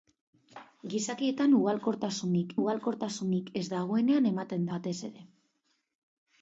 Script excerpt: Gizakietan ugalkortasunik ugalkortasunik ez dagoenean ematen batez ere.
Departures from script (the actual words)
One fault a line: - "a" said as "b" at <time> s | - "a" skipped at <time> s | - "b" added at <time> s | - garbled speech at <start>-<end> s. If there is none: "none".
none